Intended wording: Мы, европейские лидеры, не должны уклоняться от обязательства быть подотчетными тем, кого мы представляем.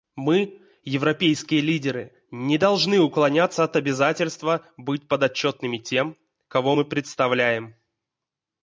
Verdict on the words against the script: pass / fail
pass